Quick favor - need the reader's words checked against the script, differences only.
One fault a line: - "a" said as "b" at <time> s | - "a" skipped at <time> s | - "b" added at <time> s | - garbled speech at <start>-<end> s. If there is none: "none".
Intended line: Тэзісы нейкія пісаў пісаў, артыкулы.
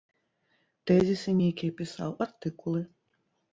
- "пісаў" skipped at 2.2 s